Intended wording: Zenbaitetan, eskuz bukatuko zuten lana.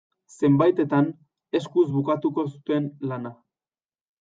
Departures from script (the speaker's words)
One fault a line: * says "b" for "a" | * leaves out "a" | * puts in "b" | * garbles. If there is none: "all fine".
all fine